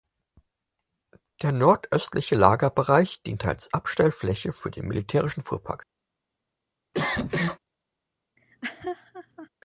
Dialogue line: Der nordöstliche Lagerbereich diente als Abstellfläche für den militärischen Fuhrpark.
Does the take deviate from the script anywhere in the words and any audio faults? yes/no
yes